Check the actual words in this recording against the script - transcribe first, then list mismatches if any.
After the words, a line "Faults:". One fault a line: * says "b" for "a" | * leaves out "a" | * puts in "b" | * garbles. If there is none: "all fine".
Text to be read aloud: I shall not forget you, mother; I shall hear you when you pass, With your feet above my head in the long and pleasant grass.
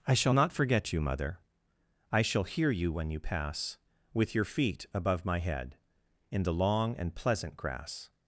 I shall not forget you, mother; I shall hear you when you pass, With your feet above my head in the long and pleasant grass.
Faults:
all fine